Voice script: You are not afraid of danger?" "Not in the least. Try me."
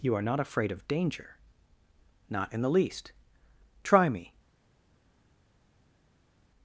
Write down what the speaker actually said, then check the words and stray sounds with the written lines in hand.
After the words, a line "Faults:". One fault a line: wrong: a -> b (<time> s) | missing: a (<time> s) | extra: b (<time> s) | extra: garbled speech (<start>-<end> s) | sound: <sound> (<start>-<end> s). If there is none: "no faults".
You are not afraid of danger?" "Not in the least. Try me."
Faults:
no faults